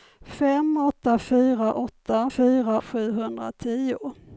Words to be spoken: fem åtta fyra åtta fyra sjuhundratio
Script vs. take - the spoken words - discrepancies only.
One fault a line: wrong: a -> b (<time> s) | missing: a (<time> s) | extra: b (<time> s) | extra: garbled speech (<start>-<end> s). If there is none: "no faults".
no faults